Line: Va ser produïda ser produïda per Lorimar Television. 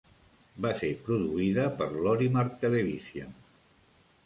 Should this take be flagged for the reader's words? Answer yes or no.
yes